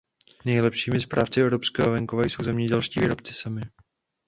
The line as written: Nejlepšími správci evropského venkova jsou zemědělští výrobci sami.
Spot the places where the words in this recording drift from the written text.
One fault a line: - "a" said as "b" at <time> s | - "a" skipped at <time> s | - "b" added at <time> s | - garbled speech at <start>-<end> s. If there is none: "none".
none